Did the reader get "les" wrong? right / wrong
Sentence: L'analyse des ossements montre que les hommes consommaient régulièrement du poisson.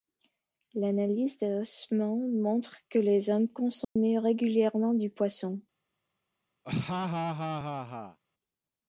right